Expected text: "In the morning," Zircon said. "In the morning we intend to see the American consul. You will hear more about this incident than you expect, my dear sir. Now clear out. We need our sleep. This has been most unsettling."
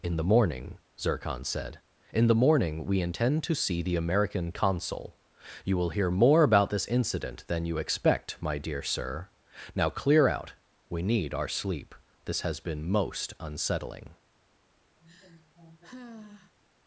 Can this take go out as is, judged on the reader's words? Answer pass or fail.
pass